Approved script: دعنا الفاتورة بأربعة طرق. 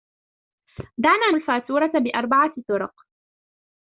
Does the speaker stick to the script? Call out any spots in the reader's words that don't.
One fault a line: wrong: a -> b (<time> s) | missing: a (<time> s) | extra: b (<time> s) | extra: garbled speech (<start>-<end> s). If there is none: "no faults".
no faults